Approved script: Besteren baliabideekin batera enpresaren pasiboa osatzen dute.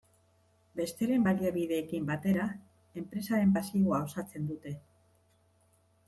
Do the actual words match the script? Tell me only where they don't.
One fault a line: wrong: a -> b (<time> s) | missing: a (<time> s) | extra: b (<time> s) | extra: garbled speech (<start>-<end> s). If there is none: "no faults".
no faults